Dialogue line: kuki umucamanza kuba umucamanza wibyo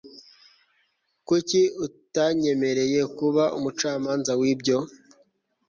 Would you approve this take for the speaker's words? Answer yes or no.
no